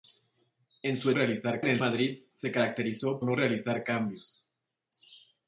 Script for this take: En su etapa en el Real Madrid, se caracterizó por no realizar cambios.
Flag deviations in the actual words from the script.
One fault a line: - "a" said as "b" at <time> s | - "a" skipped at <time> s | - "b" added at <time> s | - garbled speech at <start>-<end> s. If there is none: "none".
- "etapa" said as "realizar" at 1.1 s
- "Real" skipped at 1.8 s
- "por" skipped at 3.2 s